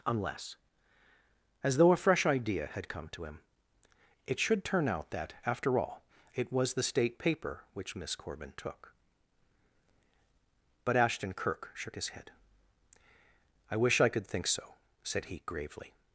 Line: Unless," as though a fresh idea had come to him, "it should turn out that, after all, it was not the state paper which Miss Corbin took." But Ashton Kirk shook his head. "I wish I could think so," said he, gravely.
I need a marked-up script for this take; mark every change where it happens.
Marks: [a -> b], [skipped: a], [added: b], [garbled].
Unless," as though a fresh idea had come to him, "it should turn out that, after all, it was [skipped: not] the state paper which Miss Corbin took." But Ashton Kirk shook his head. "I wish I could think so," said he, gravely.